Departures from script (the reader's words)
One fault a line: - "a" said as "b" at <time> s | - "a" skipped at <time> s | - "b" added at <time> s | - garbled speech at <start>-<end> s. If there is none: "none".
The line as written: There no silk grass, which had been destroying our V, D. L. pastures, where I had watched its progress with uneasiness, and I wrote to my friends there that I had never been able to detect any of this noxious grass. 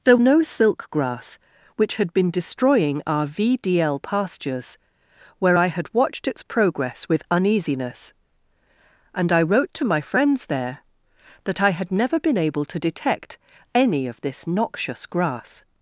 none